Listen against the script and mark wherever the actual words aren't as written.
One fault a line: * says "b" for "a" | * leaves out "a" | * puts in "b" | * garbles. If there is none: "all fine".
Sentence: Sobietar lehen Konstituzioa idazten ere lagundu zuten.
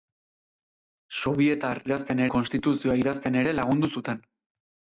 * says "idazten" for "lehen"